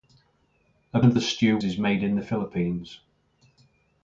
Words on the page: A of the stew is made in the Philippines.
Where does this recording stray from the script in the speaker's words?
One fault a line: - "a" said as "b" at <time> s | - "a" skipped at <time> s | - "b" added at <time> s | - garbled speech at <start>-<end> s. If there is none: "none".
none